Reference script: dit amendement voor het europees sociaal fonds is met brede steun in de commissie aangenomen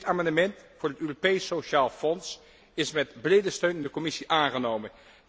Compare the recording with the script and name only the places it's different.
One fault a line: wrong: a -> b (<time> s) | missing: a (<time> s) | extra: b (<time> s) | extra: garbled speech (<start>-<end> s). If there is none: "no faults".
no faults